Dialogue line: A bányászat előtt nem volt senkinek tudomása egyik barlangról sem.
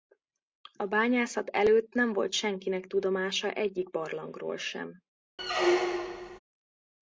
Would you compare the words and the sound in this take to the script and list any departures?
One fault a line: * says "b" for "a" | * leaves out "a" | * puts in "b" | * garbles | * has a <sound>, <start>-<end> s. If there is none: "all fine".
* has a squeak, 5.4-6.4 s